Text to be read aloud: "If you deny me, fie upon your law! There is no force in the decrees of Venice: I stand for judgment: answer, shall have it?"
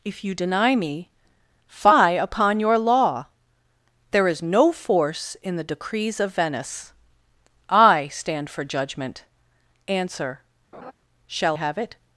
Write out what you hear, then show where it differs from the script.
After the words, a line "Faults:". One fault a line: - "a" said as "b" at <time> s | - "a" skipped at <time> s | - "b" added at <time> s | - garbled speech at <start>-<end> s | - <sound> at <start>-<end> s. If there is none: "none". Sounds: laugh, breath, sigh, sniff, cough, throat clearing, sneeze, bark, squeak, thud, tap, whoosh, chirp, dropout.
"If you deny me, fie upon your law! There is no force in the decrees of Venice: I stand for judgment: answer, shall have it?"
Faults:
- laugh at 10.7-10.9 s